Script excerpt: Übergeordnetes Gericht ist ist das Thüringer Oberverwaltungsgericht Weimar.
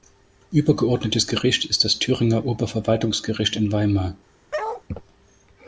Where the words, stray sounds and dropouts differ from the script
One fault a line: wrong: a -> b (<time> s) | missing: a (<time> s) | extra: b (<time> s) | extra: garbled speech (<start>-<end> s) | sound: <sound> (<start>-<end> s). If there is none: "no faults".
missing: ist (1.9 s)
extra: in (3.5 s)
sound: bark (4.5-4.8 s)